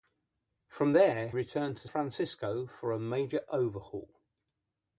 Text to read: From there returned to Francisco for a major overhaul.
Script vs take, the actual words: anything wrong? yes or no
no